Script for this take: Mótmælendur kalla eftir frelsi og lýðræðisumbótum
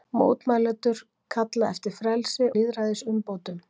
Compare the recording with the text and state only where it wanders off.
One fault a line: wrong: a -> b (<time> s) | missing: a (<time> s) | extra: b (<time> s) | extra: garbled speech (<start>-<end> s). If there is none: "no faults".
missing: og (2.5 s)